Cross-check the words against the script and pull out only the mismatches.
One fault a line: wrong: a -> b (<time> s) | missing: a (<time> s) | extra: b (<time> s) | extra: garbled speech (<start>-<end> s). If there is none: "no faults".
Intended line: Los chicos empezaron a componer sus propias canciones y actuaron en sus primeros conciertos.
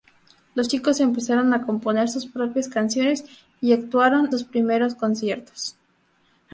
missing: en (4.3 s)